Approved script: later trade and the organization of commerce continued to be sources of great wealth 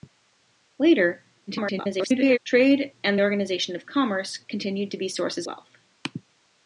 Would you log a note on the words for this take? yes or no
yes